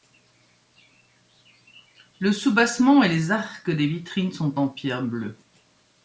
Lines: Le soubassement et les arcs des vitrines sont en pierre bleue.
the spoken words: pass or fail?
pass